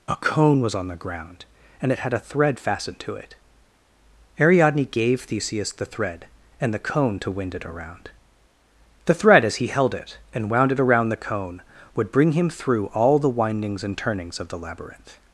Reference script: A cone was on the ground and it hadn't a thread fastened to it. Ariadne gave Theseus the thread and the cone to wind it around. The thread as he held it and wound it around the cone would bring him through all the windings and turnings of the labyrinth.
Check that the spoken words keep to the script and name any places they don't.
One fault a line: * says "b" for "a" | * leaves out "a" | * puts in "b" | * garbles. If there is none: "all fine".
* says "had" for "hadn't"